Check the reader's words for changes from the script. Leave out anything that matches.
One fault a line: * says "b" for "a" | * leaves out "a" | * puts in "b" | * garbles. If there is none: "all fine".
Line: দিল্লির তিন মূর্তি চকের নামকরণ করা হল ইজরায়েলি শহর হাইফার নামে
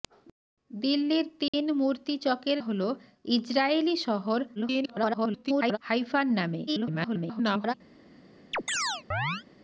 * leaves out "নামকরণ করা"
* garbles
* garbles